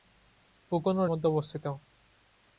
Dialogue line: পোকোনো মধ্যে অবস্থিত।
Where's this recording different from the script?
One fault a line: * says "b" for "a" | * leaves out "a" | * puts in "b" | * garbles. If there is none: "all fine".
all fine